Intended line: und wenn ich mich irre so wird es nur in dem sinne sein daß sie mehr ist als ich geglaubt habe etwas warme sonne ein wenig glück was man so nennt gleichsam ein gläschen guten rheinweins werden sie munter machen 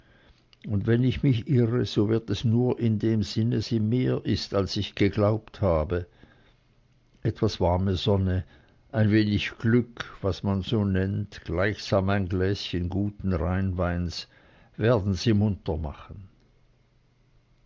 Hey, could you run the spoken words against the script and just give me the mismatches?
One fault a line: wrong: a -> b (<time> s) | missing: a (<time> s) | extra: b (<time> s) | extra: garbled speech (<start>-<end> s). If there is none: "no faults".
missing: sein daß (3.6 s)